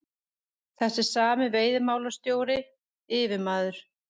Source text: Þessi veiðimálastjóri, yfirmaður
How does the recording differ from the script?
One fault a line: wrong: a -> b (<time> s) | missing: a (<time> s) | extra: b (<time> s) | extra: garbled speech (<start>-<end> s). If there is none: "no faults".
extra: sami (1.1 s)